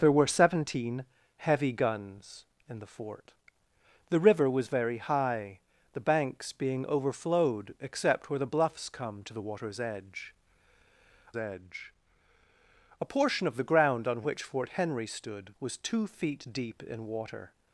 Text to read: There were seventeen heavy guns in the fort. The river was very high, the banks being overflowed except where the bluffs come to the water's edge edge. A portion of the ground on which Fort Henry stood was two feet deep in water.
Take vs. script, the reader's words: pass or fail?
pass